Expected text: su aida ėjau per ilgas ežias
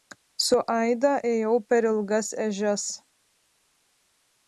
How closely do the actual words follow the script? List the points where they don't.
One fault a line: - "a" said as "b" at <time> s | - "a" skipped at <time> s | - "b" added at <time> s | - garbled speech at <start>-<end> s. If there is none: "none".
none